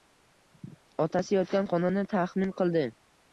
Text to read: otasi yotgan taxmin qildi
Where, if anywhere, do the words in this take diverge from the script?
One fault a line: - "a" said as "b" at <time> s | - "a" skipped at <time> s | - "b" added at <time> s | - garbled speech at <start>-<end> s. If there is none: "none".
- "xonani" added at 1.7 s